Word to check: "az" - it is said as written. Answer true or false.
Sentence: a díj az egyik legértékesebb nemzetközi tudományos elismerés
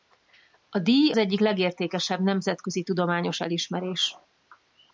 false